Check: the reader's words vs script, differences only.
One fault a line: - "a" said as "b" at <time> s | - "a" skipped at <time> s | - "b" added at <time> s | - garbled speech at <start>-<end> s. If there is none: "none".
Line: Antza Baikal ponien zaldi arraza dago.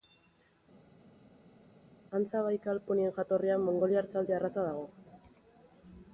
- "jatorrian mongoliar" added at 3.2 s